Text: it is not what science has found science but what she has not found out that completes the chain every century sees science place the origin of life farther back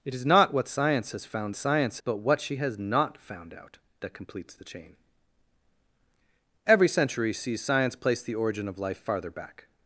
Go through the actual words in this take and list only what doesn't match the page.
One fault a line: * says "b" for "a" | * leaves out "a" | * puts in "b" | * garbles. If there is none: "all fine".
all fine